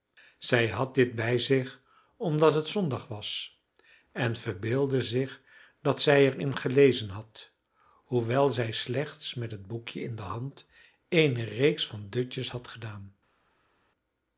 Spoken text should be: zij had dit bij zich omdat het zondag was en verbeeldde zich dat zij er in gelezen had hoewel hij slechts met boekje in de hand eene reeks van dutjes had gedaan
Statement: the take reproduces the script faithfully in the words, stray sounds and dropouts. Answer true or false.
false